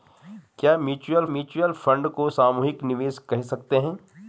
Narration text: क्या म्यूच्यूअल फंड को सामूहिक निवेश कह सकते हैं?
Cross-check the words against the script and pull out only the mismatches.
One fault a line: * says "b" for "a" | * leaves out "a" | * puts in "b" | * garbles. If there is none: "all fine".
* puts in "म्यूच्यूअल"